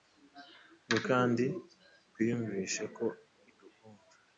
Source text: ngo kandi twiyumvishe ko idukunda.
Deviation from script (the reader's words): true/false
false